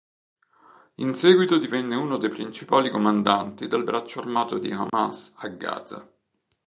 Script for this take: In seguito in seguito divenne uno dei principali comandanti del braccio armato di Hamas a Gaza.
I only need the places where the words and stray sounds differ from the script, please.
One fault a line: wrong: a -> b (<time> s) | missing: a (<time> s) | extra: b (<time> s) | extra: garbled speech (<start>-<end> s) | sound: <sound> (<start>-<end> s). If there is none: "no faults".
missing: in seguito (1.6 s)
sound: dropout (4.9-4.9 s)